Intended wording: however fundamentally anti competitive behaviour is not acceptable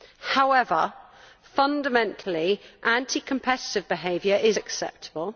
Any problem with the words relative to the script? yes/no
yes